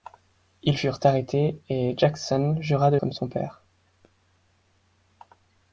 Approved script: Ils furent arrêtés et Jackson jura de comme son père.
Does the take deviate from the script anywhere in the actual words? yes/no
no